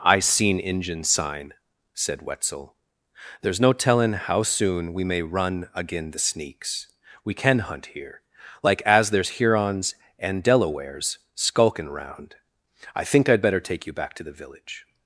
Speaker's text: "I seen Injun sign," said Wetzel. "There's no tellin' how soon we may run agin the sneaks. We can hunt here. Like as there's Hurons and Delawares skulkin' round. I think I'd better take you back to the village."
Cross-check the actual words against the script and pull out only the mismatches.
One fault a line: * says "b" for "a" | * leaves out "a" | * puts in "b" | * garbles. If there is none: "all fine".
all fine